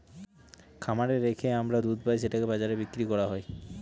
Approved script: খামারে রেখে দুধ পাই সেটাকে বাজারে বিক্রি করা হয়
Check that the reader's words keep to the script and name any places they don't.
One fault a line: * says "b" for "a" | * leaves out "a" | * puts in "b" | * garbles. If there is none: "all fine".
* puts in "আমরা"